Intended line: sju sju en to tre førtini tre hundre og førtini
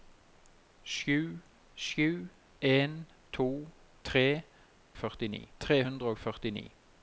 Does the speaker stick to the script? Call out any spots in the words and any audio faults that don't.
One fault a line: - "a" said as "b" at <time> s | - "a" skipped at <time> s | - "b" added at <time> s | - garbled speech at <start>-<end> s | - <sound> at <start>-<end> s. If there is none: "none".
none